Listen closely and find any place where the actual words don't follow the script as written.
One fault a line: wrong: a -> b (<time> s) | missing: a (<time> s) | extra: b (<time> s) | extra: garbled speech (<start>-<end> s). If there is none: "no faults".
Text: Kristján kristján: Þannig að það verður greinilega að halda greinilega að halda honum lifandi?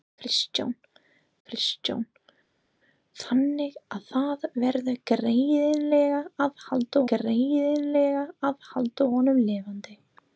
no faults